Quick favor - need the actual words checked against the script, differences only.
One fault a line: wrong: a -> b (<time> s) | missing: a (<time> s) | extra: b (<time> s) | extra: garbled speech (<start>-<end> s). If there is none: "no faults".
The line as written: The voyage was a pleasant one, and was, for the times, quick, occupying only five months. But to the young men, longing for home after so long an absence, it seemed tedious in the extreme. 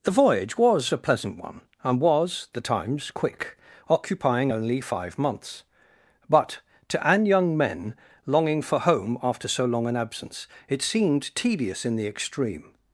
missing: for (2.5 s)
wrong: the -> an (7.1 s)